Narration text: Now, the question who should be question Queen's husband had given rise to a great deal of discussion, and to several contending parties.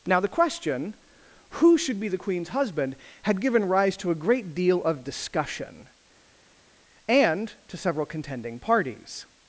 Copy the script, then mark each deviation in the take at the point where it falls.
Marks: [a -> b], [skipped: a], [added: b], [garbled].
Now, the question who should be [question -> the] Queen's husband had given rise to a great deal of discussion, and to several contending parties.